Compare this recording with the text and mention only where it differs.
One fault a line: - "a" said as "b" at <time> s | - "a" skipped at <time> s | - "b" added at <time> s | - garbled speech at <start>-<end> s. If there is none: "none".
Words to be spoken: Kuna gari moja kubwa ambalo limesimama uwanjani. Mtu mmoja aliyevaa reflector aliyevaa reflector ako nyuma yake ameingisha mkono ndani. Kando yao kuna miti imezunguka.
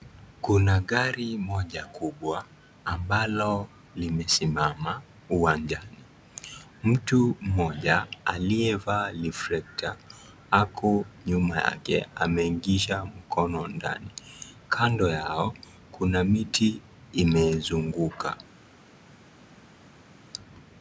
- "aliyevaa reflector" skipped at 10.0 s